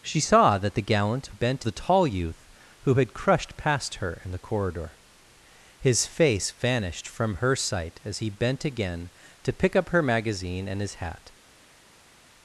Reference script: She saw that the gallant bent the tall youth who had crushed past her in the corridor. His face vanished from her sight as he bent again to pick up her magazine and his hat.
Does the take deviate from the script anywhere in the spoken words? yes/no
no